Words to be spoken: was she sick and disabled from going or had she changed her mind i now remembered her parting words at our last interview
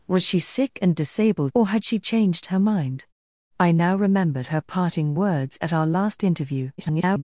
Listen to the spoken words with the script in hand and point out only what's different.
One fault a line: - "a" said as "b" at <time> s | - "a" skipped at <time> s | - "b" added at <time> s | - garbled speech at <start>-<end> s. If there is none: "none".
- "from going" skipped at 1.5 s
- garbled speech at 6.8-7.2 s